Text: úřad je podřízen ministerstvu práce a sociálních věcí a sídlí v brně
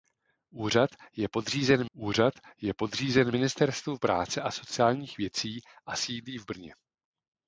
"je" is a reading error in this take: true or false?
false